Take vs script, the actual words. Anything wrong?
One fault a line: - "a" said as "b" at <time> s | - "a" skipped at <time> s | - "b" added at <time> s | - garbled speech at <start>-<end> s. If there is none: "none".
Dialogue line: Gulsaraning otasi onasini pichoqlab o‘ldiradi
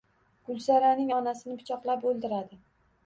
- "otasi" skipped at 1.1 s